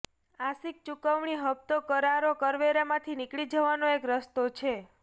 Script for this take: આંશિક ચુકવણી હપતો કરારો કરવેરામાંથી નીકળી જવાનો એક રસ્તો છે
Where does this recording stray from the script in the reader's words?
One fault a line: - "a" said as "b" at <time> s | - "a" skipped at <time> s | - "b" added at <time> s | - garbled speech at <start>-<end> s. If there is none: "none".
none